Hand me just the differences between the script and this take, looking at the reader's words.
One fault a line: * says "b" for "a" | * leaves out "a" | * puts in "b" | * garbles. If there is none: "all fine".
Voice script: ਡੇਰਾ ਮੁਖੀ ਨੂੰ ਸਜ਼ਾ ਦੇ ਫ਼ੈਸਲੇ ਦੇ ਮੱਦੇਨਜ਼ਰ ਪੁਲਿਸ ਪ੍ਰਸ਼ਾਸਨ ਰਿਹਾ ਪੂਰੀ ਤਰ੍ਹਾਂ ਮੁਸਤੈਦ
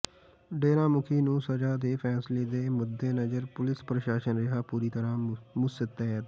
all fine